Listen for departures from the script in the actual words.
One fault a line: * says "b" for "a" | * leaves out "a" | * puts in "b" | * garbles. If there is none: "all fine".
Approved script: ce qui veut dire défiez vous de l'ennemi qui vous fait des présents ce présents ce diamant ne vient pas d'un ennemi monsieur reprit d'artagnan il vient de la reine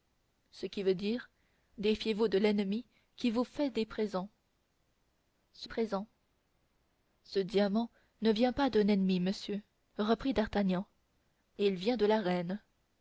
all fine